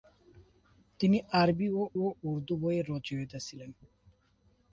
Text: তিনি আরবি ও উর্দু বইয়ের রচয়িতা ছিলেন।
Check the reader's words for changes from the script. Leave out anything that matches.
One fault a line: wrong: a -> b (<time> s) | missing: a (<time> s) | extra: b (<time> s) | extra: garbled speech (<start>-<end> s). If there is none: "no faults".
extra: ও (2.0 s)